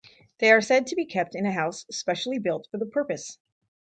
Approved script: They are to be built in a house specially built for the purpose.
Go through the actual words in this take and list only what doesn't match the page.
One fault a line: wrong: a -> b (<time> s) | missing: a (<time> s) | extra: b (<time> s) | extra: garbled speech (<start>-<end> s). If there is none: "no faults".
extra: said (0.6 s)
wrong: built -> kept (1.0 s)